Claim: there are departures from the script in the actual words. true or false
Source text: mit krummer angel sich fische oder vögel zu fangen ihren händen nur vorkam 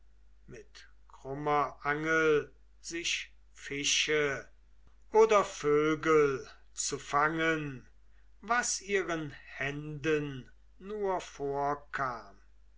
true